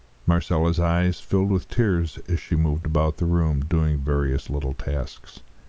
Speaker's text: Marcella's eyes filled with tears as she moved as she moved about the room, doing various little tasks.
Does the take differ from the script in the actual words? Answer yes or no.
yes